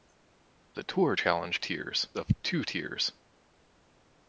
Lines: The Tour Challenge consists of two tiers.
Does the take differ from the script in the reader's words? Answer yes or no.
yes